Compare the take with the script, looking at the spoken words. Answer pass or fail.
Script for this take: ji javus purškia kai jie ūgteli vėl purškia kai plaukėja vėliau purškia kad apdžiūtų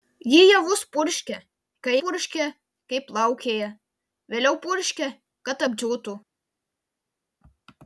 fail